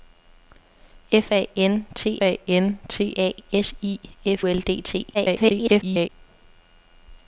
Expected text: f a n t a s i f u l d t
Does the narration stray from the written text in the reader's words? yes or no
yes